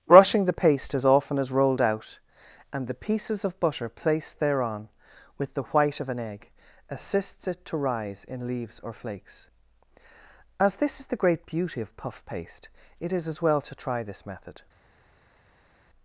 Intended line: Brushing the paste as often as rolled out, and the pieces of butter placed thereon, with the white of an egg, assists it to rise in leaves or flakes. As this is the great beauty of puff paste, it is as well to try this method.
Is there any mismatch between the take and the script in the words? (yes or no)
no